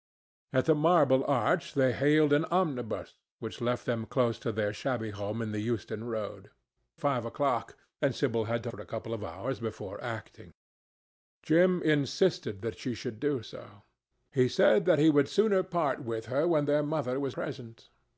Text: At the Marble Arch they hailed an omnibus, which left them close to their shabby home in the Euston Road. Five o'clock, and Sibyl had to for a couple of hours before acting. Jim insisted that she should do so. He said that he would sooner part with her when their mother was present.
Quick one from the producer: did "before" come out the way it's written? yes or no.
yes